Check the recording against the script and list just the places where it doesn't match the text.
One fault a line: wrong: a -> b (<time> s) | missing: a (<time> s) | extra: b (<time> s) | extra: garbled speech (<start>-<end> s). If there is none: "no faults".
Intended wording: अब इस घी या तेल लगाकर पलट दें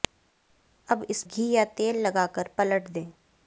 no faults